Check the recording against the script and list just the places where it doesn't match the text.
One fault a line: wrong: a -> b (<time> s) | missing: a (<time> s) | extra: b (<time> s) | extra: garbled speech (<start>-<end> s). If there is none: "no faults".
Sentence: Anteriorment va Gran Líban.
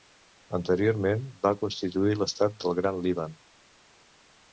extra: constituir l'estat del (1.6 s)